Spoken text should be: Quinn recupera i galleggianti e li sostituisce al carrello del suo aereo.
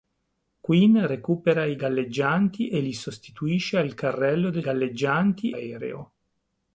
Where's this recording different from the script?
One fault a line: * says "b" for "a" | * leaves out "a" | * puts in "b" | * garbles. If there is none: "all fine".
* says "galleggianti" for "suo"